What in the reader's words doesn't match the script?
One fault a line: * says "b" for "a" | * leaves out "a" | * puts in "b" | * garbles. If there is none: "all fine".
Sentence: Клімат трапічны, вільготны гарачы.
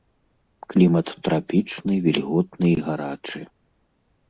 * puts in "і"